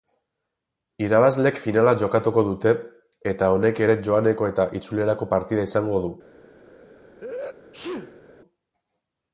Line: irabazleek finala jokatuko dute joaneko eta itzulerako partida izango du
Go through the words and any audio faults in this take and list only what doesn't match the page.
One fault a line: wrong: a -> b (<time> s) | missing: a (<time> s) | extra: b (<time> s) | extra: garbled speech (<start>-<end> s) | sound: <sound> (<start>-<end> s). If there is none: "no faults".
extra: eta honek ere (3.3 s)
sound: sneeze (7.2-8.2 s)